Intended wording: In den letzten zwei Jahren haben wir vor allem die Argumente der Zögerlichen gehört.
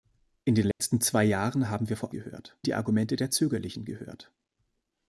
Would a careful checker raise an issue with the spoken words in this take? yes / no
yes